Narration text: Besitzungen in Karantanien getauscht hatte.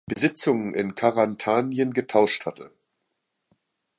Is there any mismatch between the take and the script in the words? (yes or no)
no